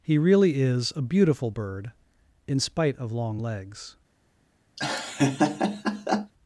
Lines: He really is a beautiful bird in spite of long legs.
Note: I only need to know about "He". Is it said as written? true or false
true